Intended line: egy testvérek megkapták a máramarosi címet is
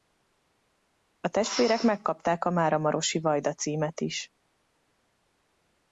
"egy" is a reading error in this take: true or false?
true